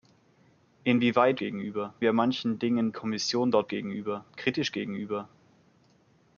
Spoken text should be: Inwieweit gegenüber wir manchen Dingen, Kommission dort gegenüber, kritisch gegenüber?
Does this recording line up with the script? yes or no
yes